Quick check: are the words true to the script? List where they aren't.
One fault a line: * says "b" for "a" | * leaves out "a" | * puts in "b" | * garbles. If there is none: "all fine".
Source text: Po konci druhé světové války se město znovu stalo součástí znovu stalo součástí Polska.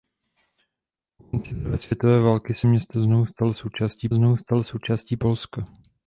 all fine